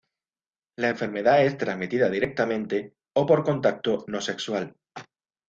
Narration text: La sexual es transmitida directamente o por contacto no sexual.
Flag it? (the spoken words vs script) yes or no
yes